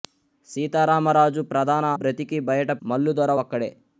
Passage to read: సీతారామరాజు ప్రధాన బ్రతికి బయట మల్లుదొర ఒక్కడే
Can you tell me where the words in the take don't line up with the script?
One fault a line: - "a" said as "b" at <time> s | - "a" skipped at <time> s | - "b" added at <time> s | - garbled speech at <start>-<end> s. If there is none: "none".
none